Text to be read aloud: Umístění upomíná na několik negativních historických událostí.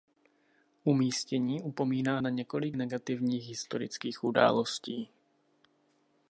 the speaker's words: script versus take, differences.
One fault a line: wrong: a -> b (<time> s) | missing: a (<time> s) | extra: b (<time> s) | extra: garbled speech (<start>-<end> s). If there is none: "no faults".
no faults